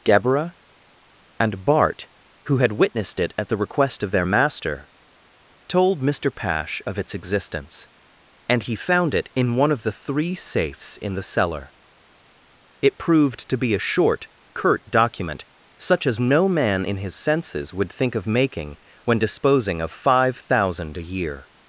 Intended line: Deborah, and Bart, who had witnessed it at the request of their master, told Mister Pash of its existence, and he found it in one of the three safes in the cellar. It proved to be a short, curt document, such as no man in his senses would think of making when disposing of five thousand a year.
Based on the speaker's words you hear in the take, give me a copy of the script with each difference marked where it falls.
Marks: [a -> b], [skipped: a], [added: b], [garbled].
Deborah, and Bart, who had witnessed it at the request of their master, told Mister Pash of its existence, and he found it in one of the three safes in the cellar. It proved to be a short, curt document, such as no man in his senses would think of making when disposing of five thousand a year.